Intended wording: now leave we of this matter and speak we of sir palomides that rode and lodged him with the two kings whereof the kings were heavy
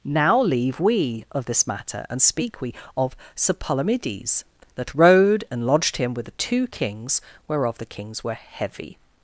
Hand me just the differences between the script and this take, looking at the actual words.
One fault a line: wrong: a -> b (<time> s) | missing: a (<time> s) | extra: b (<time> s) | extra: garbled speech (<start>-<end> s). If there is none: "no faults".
no faults